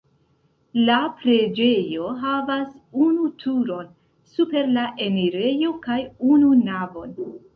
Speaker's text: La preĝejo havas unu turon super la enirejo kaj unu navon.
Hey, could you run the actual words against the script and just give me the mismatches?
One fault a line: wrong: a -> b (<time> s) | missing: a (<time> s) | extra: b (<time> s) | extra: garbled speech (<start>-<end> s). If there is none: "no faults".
no faults